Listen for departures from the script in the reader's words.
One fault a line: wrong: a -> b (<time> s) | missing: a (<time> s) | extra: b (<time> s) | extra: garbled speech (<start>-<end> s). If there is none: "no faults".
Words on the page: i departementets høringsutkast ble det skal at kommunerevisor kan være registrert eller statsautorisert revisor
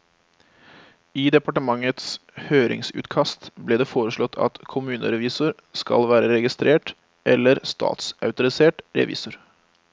wrong: skal -> foreslått (3.9 s)
wrong: kan -> skal (5.8 s)